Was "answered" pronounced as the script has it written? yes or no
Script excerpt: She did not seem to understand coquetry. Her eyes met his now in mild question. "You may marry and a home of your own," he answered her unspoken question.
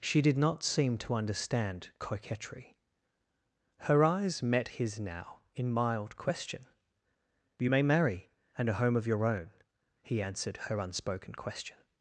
yes